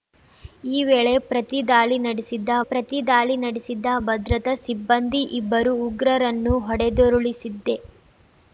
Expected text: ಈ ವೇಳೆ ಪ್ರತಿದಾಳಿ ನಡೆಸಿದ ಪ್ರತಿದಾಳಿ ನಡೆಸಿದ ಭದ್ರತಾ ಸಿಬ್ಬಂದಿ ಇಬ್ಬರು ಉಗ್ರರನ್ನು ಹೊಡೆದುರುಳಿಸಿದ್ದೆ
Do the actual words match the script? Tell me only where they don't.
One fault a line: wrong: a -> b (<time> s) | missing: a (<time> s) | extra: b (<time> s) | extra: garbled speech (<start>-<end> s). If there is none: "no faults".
no faults